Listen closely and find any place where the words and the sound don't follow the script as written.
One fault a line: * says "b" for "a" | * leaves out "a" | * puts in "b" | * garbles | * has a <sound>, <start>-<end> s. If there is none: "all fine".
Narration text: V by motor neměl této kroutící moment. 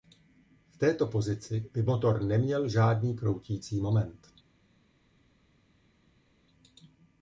* puts in "této pozici"
* says "žádný" for "této"